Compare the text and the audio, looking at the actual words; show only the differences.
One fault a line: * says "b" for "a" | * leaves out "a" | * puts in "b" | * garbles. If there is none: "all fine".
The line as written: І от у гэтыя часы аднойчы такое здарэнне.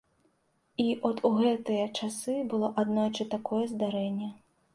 * puts in "было"